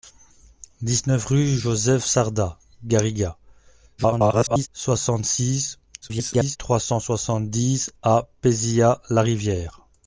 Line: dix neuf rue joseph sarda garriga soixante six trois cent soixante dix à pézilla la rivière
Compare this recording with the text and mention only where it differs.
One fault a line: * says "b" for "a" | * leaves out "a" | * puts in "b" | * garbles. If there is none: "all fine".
* garbles
* garbles